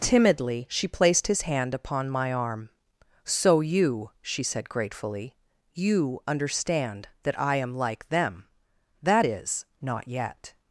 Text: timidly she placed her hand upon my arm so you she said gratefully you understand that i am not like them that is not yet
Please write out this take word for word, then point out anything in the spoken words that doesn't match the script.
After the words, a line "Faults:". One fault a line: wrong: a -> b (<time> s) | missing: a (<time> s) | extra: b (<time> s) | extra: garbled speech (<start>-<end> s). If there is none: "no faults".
timidly she placed his hand upon my arm so you she said gratefully you understand that i am like them that is not yet
Faults:
wrong: her -> his (1.3 s)
missing: not (7.7 s)